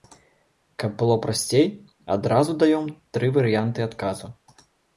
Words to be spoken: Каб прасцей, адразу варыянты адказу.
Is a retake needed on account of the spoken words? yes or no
yes